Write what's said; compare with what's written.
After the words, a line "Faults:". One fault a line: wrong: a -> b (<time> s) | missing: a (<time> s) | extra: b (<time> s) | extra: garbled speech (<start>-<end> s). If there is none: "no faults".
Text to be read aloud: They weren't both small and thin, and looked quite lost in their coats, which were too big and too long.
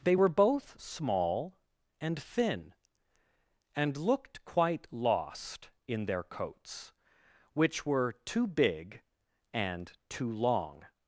They were both small and thin, and looked quite lost in their coats, which were too big and too long.
Faults:
wrong: weren't -> were (0.1 s)